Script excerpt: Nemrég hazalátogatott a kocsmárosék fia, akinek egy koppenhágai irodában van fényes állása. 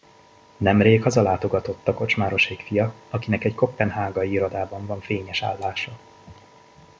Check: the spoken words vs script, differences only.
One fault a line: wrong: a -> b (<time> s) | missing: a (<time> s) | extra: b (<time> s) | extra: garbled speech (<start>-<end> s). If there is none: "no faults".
no faults